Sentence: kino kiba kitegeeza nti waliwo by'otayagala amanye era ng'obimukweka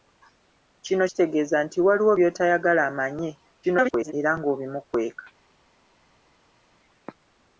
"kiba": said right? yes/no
no